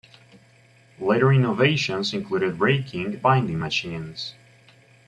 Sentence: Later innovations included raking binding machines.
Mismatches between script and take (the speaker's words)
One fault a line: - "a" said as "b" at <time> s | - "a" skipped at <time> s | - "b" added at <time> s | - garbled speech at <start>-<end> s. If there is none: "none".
none